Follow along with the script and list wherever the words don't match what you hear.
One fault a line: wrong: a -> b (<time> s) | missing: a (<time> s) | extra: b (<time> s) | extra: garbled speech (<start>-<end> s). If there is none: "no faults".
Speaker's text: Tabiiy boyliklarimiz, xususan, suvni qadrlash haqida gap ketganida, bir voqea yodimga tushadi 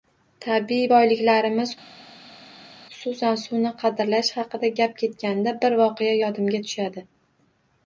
no faults